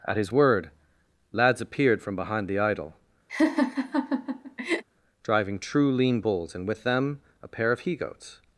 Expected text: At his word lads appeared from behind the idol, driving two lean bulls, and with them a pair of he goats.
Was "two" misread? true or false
true